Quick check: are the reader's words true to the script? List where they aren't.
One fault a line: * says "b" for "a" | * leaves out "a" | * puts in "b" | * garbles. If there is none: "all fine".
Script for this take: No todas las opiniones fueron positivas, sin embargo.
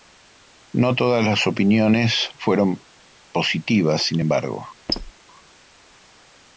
all fine